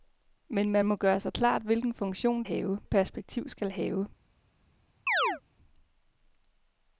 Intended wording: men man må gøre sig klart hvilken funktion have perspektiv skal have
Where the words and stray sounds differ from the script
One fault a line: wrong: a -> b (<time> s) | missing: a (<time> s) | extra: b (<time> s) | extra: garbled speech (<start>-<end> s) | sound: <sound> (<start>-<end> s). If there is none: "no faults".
sound: chirp (5.1-5.4 s)